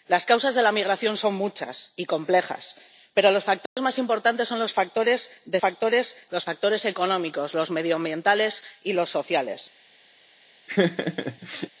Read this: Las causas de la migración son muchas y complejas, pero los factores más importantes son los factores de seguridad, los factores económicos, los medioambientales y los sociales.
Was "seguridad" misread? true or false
true